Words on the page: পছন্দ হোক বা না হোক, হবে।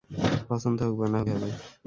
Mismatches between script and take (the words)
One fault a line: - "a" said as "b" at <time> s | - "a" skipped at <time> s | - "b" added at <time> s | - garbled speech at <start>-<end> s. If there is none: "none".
none